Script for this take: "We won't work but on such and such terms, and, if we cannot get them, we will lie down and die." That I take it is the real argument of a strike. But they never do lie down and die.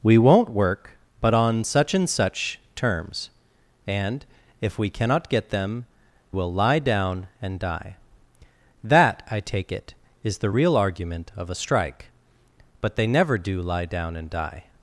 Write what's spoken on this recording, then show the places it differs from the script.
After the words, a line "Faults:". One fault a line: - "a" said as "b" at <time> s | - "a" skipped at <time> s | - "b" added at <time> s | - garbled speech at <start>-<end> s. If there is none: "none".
"We won't work but on such and such terms, and, if we cannot get them, will lie down and die." That I take it is the real argument of a strike. But they never do lie down and die.
Faults:
- "we" skipped at 5.8 s